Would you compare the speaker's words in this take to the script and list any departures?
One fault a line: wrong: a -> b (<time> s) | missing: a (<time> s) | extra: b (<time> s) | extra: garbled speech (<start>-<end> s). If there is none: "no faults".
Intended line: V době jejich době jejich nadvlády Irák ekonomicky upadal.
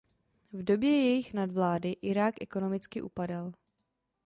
missing: době jejich (1.3 s)